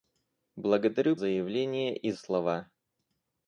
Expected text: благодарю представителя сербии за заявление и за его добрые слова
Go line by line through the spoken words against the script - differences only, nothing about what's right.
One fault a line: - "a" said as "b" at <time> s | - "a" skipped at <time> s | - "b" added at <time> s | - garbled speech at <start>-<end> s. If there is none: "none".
- "представителя сербии за" skipped at 1.1 s
- "за его добрые" skipped at 2.1 s